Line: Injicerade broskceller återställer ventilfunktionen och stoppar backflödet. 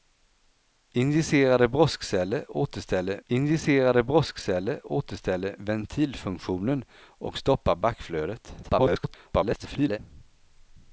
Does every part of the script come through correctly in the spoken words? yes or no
no